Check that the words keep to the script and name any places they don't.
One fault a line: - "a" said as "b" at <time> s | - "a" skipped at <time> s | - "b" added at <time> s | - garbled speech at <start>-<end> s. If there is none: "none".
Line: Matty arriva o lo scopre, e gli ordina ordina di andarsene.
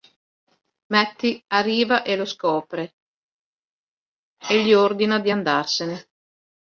- "o" said as "e" at 2.0 s
- "ordina" skipped at 5.2 s